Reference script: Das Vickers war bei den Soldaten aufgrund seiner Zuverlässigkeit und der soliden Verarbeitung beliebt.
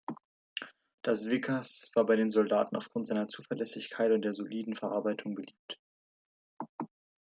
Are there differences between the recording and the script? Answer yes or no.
no